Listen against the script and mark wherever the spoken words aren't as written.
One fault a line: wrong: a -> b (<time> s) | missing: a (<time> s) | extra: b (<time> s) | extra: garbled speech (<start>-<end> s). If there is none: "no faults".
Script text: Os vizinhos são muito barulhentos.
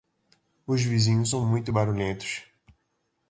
no faults